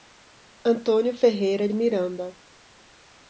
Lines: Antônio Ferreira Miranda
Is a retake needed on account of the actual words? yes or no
no